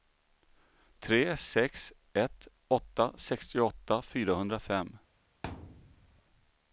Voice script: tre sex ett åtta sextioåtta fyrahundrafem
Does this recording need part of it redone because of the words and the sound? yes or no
yes